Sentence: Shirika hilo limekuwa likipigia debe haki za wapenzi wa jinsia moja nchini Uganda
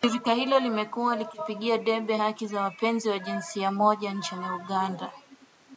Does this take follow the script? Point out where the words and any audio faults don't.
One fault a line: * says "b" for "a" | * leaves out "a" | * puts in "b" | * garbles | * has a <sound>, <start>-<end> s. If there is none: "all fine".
all fine